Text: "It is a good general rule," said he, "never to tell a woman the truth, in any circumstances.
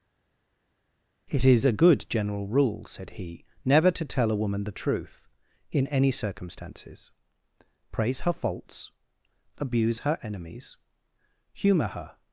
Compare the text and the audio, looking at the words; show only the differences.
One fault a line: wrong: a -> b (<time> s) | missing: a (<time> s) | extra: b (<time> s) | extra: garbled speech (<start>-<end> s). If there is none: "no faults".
extra: Praise her faults abuse her enemies humour her (7.9 s)